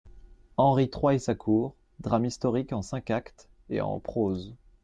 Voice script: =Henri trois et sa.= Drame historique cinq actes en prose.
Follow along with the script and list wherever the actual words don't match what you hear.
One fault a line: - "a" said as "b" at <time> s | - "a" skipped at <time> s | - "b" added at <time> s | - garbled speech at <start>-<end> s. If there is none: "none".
- "cour" added at 1.4 s
- "en" added at 2.7 s
- "et" added at 3.7 s